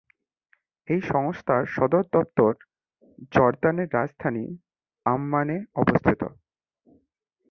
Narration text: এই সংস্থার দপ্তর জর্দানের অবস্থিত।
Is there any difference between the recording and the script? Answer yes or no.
yes